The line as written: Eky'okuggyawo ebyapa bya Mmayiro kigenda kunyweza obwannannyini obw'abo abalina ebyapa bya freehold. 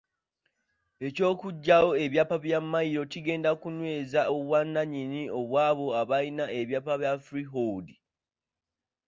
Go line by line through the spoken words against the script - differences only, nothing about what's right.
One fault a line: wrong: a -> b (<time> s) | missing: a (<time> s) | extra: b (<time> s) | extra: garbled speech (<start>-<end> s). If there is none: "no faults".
no faults